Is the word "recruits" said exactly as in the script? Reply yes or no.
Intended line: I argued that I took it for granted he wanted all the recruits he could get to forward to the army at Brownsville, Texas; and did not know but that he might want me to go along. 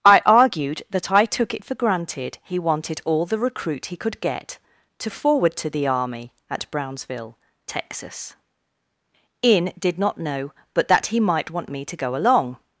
no